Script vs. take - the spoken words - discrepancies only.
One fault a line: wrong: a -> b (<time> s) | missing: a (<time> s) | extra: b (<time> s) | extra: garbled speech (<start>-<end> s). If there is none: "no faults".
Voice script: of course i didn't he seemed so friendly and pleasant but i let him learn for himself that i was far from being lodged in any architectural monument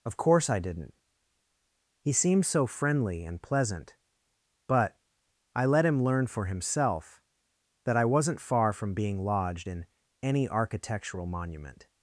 wrong: was -> wasn't (8.1 s)